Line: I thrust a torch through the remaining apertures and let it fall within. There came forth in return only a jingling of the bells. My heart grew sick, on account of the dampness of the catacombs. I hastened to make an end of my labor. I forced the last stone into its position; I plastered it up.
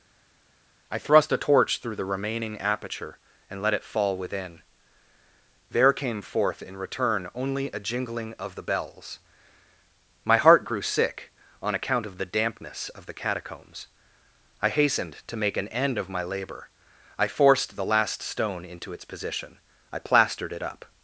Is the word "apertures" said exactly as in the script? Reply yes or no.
no